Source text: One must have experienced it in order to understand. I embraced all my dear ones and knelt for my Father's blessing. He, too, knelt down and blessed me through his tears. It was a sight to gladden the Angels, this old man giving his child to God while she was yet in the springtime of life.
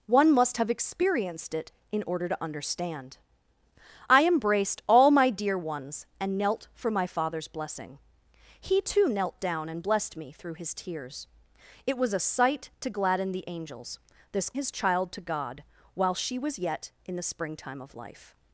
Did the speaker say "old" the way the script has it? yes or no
no